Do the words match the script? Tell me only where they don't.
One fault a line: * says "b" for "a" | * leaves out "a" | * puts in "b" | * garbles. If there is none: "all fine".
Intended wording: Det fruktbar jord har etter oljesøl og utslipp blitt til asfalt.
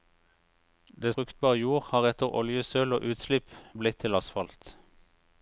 all fine